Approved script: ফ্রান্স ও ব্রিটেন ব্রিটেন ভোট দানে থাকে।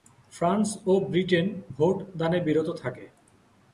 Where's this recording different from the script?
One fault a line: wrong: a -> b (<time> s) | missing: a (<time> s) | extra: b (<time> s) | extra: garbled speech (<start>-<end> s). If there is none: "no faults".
missing: ব্রিটেন (1.5 s)
extra: বিরত (2.5 s)